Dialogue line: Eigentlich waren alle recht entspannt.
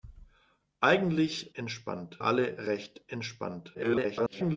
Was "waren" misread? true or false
true